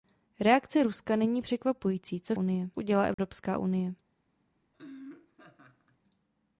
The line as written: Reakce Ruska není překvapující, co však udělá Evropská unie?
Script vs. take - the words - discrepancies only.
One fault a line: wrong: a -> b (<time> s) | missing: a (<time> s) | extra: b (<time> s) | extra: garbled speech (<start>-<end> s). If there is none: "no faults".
wrong: však -> unie (2.3 s)